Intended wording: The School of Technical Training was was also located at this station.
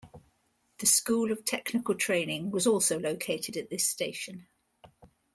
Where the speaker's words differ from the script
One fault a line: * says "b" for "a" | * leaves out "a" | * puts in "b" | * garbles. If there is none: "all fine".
* leaves out "was"